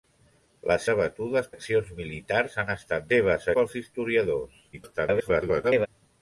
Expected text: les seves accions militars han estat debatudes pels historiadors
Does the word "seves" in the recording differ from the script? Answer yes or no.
yes